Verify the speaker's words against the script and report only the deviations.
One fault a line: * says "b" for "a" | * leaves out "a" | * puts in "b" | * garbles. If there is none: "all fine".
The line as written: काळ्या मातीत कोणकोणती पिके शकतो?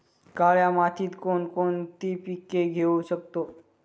* puts in "घेऊ"